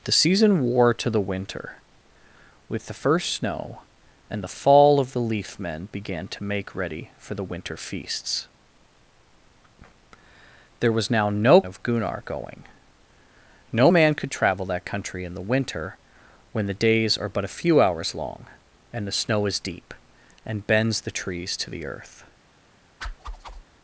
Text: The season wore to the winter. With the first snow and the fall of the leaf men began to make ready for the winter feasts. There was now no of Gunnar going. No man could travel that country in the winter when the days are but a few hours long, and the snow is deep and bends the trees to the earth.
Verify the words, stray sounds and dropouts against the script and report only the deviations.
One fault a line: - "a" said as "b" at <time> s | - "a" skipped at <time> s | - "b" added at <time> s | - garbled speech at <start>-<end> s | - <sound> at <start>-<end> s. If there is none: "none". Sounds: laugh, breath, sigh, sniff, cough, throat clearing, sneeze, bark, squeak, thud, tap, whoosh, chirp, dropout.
- whoosh at 23.0-23.6 s